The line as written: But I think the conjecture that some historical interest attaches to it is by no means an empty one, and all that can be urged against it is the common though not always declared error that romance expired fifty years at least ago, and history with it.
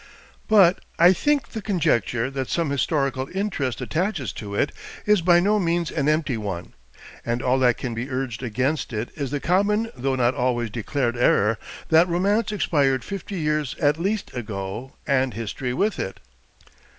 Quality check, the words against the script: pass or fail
pass